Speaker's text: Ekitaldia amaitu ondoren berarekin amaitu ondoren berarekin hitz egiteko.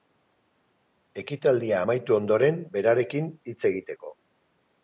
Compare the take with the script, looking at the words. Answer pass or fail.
fail